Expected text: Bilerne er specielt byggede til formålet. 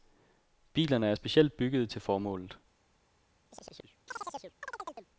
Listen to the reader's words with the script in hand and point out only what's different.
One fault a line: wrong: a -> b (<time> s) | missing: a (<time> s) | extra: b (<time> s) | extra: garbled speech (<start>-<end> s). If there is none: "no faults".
no faults